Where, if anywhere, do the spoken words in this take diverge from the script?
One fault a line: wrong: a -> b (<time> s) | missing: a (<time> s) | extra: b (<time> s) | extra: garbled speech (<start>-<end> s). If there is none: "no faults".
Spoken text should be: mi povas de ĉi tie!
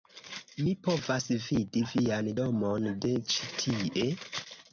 extra: vidi vian domon (1.5 s)